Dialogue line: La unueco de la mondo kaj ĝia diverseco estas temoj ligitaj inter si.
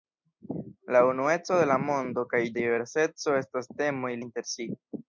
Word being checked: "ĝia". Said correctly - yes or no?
no